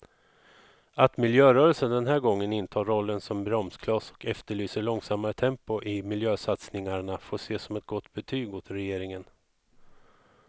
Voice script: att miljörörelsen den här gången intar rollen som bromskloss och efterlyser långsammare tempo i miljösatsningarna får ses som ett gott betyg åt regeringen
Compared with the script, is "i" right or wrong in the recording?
right